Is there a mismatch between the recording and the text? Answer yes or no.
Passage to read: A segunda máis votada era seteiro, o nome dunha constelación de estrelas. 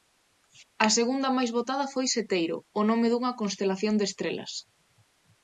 yes